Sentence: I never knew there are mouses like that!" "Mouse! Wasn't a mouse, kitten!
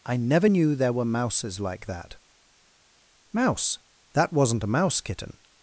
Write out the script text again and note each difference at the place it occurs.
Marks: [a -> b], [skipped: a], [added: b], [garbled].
I never knew there [are -> were] mouses like that!" "Mouse! [added: That] Wasn't a mouse, kitten!